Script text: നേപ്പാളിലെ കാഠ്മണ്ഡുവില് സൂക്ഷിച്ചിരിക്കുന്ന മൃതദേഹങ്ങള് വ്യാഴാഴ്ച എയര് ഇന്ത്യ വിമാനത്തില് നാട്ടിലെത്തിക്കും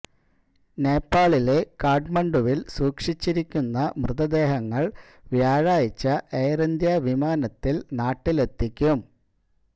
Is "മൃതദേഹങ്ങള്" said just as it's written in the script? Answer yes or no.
yes